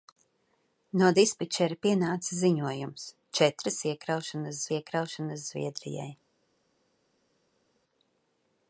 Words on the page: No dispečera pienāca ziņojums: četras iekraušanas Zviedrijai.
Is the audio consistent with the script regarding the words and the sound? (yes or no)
no